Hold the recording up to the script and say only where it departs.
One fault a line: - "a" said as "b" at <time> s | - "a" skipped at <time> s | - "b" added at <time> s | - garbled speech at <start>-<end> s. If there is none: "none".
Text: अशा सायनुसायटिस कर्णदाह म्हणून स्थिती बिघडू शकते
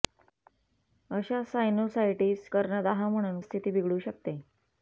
none